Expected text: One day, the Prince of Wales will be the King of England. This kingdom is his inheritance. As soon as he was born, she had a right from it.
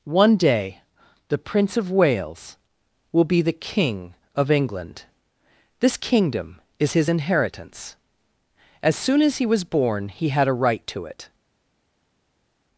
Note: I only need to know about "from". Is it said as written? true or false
false